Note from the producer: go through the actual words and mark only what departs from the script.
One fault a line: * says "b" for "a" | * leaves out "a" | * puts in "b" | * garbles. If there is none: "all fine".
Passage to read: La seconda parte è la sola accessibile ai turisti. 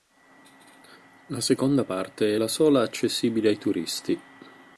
all fine